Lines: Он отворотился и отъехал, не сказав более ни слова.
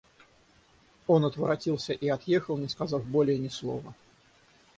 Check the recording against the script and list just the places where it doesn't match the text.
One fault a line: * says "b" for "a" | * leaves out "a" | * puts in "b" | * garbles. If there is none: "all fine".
all fine